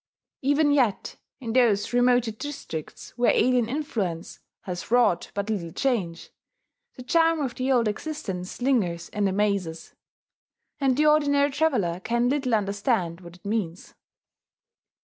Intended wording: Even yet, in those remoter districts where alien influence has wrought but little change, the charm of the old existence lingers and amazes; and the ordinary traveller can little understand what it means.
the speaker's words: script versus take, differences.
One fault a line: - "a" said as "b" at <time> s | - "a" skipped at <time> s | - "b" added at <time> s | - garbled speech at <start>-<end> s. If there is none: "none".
none